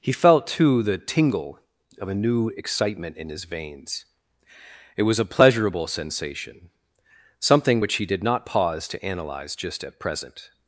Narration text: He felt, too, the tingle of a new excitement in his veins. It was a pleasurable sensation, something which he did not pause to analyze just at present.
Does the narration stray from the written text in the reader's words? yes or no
no